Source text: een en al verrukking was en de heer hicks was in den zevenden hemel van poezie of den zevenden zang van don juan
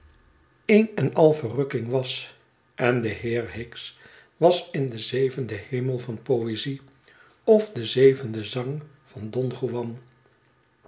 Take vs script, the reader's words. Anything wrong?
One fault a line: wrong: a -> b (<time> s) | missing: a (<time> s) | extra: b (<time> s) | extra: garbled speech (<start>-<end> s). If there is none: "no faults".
no faults